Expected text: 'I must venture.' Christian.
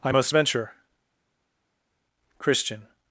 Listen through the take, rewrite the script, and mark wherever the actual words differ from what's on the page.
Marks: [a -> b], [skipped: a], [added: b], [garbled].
'I must venture.' Christian.